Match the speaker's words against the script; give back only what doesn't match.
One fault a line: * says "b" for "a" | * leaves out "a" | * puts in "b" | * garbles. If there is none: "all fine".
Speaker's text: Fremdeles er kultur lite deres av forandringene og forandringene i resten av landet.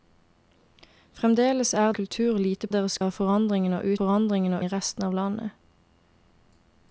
all fine